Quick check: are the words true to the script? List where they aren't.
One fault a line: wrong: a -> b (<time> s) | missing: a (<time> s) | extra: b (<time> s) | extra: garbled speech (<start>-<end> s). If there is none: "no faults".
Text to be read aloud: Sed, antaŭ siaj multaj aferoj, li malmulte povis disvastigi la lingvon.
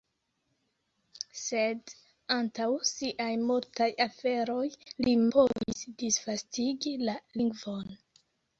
missing: malmulte (5.2 s)